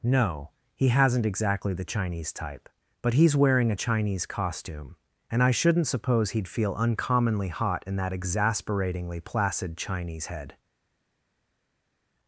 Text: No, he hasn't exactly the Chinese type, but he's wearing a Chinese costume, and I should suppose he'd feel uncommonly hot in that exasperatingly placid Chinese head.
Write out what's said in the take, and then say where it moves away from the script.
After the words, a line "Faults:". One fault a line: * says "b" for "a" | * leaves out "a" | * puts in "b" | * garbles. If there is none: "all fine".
No, he hasn't exactly the Chinese type, but he's wearing a Chinese costume, and I shouldn't suppose he'd feel uncommonly hot in that exasperatingly placid Chinese head.
Faults:
* says "shouldn't" for "should"